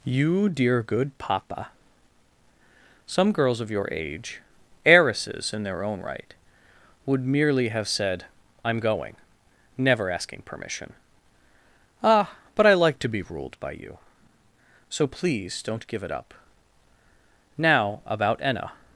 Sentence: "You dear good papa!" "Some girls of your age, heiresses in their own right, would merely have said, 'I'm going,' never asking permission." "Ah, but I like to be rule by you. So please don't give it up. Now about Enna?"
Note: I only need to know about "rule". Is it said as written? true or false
false